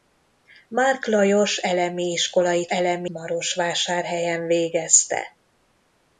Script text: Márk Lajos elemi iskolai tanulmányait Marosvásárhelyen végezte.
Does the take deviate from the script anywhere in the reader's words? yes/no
yes